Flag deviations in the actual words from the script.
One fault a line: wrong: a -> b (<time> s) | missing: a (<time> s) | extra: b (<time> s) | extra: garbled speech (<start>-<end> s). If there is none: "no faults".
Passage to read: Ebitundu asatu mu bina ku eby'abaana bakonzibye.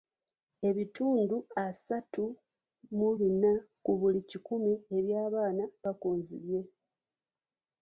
extra: buli kikumi (4.0 s)